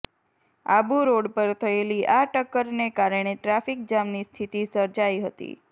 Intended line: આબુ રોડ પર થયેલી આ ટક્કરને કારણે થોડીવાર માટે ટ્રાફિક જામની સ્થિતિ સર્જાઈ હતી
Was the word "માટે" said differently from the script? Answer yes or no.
yes